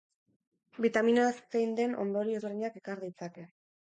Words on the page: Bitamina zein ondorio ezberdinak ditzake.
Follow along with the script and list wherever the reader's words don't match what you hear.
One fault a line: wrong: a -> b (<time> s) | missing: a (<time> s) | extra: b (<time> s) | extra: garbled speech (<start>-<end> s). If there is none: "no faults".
extra: den (1.8 s)
extra: ekar (2.8 s)